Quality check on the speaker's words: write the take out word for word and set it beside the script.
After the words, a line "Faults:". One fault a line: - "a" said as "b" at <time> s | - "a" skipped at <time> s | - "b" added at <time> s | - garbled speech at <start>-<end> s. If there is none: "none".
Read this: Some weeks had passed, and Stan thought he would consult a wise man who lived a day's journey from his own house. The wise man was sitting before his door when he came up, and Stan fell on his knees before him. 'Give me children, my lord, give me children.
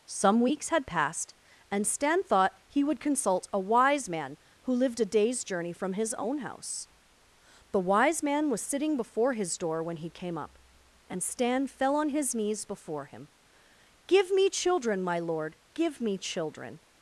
Some weeks had passed, and Stan thought he would consult a wise man who lived a day's journey from his own house. The wise man was sitting before his door when he came up, and Stan fell on his knees before him. 'Give me children, my lord, give me children.
Faults:
none